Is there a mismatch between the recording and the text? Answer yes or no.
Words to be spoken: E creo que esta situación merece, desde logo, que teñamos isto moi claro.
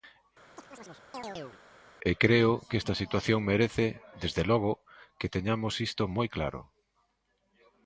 no